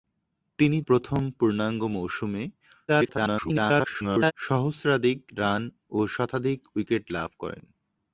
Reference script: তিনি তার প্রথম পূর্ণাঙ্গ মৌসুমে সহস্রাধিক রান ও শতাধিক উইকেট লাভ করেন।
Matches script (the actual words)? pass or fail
fail